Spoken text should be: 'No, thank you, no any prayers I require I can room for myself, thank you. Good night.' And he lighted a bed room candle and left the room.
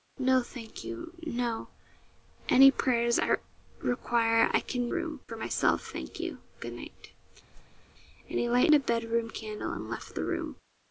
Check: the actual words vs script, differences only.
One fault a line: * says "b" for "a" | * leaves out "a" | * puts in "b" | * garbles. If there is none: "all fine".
all fine